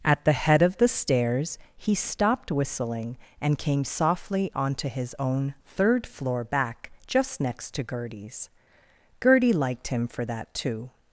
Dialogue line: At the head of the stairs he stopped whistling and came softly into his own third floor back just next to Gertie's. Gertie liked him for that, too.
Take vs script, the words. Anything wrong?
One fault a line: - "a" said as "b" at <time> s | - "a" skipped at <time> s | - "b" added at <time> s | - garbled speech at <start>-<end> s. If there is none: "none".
- "into" said as "onto" at 4.5 s